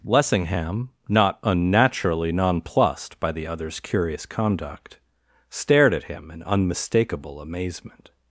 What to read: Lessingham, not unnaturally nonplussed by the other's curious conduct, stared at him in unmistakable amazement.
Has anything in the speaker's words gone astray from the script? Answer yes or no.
no